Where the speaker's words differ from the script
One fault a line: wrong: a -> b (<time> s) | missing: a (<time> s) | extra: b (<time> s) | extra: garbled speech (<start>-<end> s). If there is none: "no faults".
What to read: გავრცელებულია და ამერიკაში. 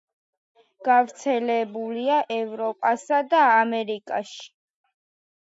extra: ევროპასა (2.4 s)